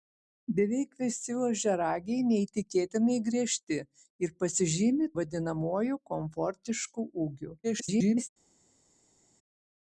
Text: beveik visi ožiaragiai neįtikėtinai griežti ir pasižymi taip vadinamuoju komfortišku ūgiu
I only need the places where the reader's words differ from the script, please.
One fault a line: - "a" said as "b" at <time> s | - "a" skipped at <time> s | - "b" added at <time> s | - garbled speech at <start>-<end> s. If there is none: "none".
- "taip" skipped at 5.1 s
- garbled speech at 7.6-8.3 s